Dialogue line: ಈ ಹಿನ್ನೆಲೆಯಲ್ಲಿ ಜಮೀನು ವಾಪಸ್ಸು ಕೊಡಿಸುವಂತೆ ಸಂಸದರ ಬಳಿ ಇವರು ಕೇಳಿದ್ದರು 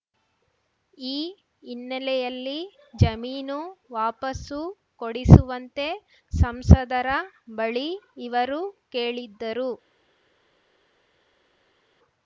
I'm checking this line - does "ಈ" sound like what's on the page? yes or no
yes